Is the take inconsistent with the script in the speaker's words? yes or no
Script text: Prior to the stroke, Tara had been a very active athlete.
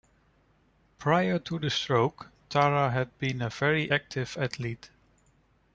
no